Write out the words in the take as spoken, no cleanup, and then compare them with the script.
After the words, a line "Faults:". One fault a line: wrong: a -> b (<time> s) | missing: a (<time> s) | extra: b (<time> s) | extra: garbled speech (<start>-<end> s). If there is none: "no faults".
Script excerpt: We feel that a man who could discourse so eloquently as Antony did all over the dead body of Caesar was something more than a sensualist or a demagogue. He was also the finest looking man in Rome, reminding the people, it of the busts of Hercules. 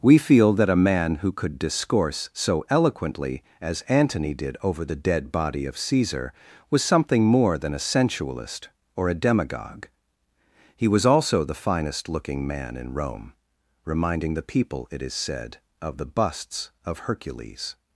We feel that a man who could discourse so eloquently as Antony did over the dead body of Caesar was something more than a sensualist or a demagogue. He was also the finest looking man in Rome, reminding the people, it is said, of the busts of Hercules.
Faults:
missing: all (4.6 s)
extra: is said (15.0 s)